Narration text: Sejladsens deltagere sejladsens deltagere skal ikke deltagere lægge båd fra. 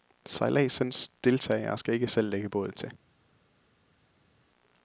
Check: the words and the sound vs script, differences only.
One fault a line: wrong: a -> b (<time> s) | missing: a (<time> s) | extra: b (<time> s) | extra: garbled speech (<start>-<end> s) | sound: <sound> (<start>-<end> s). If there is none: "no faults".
missing: sejladsens deltagere (1.8 s)
wrong: deltagere -> selv (2.1 s)
wrong: fra -> til (2.7 s)